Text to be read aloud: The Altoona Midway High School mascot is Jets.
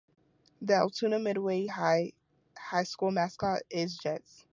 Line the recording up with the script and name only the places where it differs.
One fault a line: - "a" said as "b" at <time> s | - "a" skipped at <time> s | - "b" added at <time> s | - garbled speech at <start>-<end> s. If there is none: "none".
none